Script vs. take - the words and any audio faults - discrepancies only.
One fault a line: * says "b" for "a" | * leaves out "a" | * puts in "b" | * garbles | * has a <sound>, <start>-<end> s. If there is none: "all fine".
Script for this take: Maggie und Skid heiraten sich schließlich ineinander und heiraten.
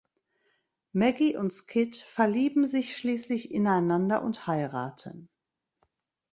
* says "verlieben" for "heiraten"